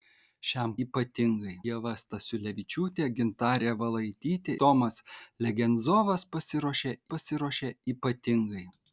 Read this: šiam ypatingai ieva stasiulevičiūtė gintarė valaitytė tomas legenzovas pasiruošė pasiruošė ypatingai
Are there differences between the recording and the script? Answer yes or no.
no